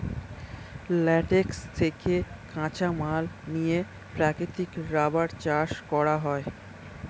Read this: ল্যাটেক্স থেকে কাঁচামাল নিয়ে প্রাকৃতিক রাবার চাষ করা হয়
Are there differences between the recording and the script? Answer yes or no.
no